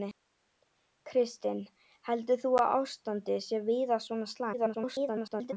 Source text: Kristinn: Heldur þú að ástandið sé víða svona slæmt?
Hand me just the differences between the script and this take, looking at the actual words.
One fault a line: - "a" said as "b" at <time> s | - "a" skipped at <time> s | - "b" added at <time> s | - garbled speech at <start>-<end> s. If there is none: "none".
- garbled speech at 4.5-5.5 s